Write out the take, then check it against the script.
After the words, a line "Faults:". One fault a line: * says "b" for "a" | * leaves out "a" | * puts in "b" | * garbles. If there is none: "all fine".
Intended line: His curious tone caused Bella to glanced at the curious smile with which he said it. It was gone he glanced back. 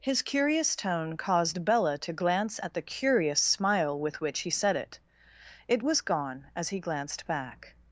His curious tone caused Bella to glance at the curious smile with which he said it. It was gone as he glanced back.
Faults:
* says "glance" for "glanced"
* puts in "as"